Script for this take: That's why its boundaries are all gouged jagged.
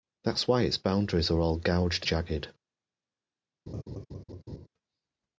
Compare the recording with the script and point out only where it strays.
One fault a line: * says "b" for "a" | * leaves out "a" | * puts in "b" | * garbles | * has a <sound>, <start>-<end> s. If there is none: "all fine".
* has a laugh, 3.7-4.7 s